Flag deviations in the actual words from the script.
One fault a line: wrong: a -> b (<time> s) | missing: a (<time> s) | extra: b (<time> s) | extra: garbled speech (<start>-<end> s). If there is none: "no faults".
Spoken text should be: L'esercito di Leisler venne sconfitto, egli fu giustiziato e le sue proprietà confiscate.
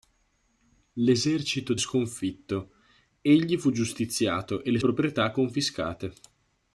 missing: di Leisler venne (1.8 s)
missing: sue (4.8 s)